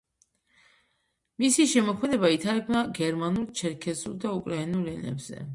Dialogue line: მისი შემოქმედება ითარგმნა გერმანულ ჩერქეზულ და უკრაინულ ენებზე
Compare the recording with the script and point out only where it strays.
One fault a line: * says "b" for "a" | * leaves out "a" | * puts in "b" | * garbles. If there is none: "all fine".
all fine